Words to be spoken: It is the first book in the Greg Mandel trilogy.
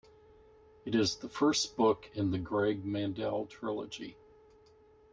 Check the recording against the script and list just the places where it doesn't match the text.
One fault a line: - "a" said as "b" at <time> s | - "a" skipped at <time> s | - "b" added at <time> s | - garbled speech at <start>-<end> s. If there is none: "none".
none